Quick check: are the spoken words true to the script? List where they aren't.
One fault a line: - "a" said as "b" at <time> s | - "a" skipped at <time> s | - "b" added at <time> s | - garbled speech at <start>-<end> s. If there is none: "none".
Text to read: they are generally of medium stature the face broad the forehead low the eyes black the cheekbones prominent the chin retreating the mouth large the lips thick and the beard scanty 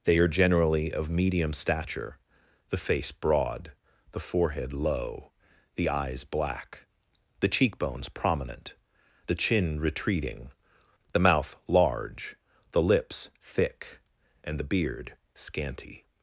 none